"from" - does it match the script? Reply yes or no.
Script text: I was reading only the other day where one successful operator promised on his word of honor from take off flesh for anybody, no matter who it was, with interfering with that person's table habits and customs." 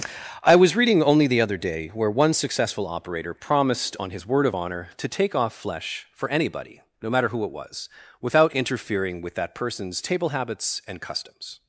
no